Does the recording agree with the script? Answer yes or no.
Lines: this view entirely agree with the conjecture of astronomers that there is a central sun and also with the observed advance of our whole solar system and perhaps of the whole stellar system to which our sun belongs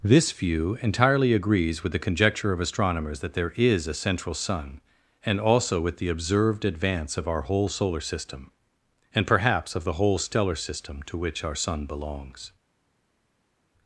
no